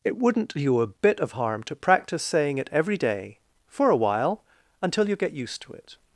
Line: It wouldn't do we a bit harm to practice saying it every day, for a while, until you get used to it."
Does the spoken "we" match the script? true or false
false